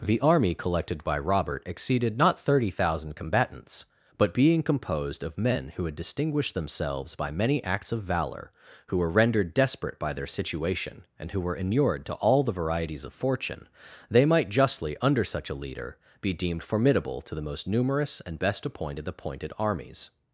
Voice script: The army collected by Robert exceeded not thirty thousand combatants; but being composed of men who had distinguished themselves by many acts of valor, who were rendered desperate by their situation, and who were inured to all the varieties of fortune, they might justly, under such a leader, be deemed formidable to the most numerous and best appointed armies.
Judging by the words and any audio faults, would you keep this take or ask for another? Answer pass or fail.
fail